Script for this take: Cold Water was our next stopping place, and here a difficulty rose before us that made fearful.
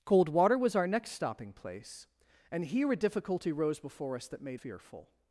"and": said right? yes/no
yes